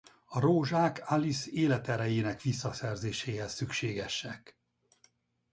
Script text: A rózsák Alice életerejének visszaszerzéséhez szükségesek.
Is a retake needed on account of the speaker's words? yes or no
no